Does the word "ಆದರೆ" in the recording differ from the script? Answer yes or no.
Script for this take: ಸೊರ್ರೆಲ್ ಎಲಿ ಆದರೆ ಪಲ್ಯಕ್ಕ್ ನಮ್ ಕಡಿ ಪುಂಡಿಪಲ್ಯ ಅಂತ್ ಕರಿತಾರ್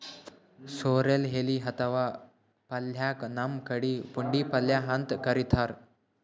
yes